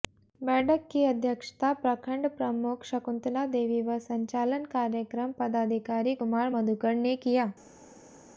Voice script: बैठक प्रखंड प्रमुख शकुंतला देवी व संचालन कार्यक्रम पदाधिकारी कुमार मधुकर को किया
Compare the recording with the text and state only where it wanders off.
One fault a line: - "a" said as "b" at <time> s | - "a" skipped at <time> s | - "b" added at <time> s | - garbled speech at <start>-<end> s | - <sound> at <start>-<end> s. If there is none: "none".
- "की अध्यक्षता" added at 0.9 s
- "को" said as "ने" at 7.0 s